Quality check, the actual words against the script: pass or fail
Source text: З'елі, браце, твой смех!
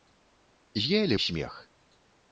fail